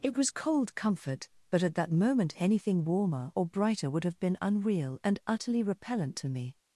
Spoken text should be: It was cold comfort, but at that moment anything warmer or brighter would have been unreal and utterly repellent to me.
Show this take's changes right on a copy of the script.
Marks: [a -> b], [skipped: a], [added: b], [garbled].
It was cold comfort, but at that moment anything warmer or brighter would have been unreal and utterly repellent to me.